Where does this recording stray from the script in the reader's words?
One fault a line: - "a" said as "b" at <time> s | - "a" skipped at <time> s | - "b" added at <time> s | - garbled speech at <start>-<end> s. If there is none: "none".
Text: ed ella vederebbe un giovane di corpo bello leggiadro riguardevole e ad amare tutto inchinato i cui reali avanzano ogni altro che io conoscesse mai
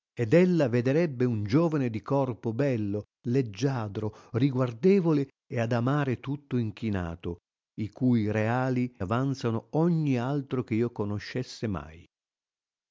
none